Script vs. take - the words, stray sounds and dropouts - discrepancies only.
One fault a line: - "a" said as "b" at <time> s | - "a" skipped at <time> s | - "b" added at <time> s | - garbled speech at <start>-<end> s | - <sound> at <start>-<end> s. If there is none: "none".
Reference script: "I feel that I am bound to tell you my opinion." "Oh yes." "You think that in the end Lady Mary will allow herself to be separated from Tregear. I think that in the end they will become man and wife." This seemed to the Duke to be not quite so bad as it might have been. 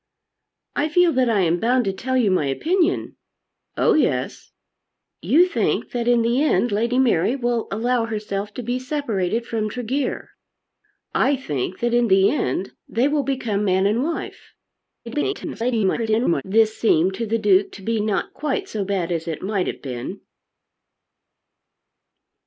- garbled speech at 15.1-16.4 s